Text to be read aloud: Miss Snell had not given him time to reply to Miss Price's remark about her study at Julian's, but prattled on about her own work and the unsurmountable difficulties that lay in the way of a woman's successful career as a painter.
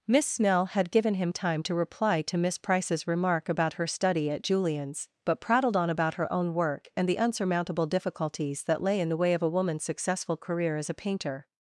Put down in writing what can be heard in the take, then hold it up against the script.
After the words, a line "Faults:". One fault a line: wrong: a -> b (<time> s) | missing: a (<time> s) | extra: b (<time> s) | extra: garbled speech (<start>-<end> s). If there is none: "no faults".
Miss Snell had given him time to reply to Miss Price's remark about her study at Julian's, but prattled on about her own work and the unsurmountable difficulties that lay in the way of a woman's successful career as a painter.
Faults:
missing: not (0.9 s)